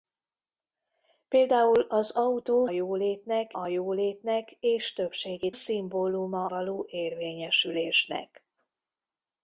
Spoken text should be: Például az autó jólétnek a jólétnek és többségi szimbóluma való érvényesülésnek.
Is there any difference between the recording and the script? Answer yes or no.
no